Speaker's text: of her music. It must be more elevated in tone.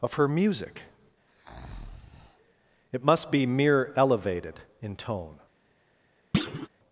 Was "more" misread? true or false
true